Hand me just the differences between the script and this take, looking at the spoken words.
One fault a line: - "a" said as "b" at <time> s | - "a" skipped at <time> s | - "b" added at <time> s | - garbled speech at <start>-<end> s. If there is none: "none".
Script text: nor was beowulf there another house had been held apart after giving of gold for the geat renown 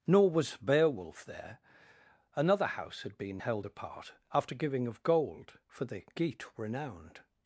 - "renown" said as "renowned" at 6.6 s